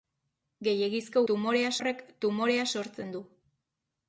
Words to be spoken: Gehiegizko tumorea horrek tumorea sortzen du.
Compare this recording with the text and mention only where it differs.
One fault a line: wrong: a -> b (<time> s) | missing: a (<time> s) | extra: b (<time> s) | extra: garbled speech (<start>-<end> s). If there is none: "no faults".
no faults